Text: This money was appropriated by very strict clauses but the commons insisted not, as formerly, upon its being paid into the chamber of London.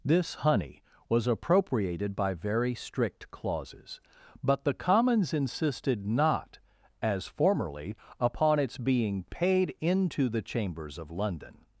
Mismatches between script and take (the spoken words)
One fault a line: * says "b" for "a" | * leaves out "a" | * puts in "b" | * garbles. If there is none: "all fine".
* says "honey" for "money"
* says "chambers" for "chamber"